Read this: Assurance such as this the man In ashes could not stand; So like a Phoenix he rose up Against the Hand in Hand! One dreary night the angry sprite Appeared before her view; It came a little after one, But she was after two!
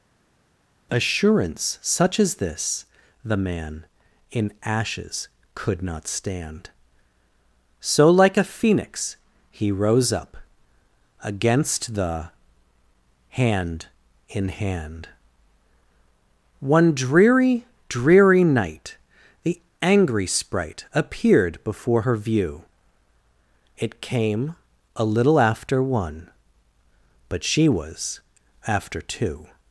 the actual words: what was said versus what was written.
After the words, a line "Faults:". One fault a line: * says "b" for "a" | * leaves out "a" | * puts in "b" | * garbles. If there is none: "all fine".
Assurance such as this the man In ashes could not stand; So like a Phoenix he rose up Against the Hand in Hand! One dreary dreary night the angry sprite Appeared before her view; It came a little after one, But she was after two!
Faults:
* puts in "dreary"